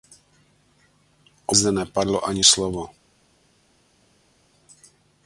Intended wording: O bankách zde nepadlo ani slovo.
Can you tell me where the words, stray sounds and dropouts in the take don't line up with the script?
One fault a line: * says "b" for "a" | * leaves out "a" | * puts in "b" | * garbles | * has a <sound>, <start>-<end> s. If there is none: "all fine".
* leaves out "bankách"